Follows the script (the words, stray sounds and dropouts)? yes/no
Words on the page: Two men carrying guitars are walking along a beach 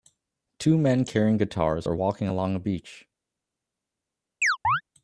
no